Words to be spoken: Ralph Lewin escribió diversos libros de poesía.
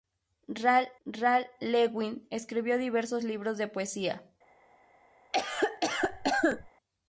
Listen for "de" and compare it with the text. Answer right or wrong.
right